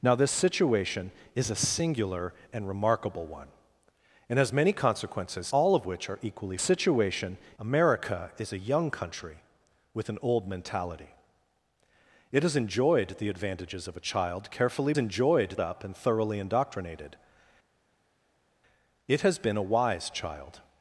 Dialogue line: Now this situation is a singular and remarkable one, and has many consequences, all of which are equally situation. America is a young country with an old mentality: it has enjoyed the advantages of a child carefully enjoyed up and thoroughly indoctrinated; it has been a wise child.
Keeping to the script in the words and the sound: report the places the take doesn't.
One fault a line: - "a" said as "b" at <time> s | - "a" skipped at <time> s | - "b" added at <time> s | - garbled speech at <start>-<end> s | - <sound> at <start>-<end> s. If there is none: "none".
none